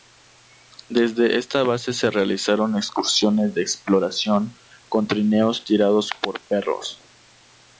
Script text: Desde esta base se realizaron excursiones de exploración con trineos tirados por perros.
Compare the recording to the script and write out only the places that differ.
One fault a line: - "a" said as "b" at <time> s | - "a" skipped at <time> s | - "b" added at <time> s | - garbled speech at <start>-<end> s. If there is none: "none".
none